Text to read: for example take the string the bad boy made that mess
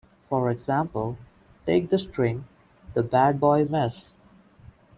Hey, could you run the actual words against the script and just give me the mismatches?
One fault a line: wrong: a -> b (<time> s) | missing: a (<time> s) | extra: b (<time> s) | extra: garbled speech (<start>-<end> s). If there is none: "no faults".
missing: made that (3.6 s)